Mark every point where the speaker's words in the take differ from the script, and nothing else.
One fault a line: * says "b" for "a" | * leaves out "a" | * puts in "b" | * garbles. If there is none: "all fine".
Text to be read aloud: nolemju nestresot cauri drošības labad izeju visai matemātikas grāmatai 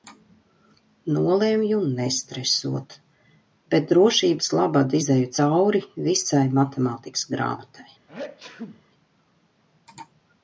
* says "bet" for "cauri"
* puts in "cauri"